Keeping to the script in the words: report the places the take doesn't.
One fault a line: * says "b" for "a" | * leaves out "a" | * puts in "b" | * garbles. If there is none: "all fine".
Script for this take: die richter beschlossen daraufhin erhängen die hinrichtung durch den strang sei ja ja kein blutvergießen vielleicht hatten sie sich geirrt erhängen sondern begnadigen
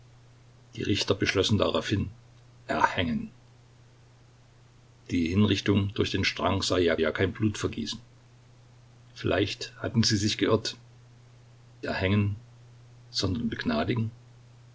all fine